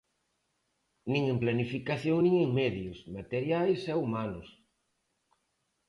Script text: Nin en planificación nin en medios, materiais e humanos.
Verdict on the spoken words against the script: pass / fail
pass